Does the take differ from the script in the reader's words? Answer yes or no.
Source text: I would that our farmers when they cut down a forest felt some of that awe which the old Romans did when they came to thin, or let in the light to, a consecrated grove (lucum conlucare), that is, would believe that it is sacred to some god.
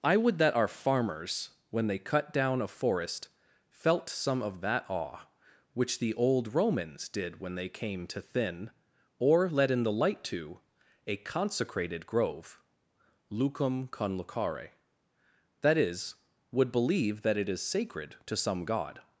no